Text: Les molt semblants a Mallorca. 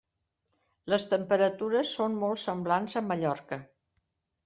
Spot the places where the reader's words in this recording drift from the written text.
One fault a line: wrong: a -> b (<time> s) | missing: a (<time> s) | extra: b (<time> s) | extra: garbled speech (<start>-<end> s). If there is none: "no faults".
extra: temperatures són (1.1 s)